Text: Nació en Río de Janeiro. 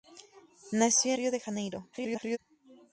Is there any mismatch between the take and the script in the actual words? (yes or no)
yes